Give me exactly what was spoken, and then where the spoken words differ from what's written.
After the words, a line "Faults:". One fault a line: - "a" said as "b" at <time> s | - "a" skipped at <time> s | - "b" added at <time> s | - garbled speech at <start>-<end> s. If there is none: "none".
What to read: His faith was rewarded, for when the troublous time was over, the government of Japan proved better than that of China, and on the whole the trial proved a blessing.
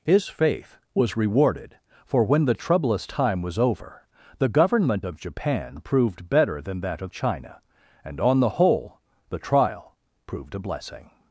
His faith was rewarded, for when the troublous time was over, the government of Japan proved better than that of China, and on the whole the trial proved a blessing.
Faults:
none